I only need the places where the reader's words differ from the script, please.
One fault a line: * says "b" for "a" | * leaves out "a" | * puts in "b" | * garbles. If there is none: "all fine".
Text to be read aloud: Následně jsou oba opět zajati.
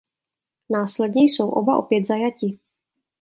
all fine